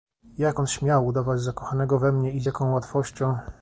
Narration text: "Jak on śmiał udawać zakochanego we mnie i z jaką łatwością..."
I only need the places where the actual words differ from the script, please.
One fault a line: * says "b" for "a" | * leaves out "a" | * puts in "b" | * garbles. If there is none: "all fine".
all fine